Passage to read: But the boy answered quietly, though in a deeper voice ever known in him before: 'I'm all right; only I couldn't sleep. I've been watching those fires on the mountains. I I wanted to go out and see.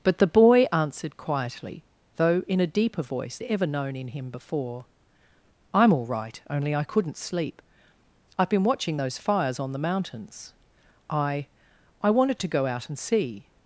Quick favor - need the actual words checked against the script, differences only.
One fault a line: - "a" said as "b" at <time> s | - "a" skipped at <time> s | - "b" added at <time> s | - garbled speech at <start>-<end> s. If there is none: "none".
none